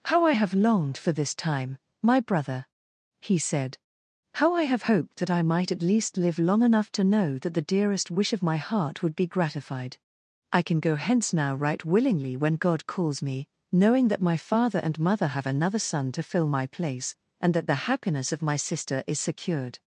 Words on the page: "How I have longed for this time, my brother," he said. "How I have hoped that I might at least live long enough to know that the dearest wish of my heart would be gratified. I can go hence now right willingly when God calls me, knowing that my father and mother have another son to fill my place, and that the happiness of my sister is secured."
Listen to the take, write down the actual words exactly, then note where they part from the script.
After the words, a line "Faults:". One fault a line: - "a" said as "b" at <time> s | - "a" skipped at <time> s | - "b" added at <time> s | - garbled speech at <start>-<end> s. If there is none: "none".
"How I have longed for this time, my brother," he said. "How I have hoped that I might at least live long enough to know that the dearest wish of my heart would be gratified. I can go hence now right willingly when God calls me, knowing that my father and mother have another son to fill my place, and that the happiness of my sister is secured."
Faults:
none